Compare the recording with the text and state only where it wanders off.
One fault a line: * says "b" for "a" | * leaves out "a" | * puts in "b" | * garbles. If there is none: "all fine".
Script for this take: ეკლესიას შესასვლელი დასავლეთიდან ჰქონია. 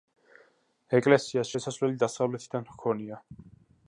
all fine